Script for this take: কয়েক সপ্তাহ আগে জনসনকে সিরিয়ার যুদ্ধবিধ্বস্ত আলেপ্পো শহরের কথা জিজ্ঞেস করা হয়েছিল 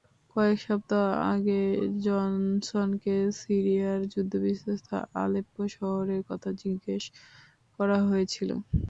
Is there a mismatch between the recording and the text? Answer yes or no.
no